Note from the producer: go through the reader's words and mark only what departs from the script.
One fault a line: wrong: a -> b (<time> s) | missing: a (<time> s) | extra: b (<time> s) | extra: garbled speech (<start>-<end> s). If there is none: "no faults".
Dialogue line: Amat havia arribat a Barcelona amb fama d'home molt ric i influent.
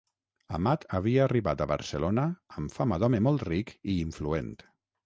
no faults